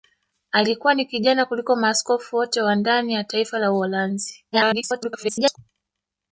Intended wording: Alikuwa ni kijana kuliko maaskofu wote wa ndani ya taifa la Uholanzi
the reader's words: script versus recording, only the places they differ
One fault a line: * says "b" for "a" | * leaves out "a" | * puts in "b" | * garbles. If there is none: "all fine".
* garbles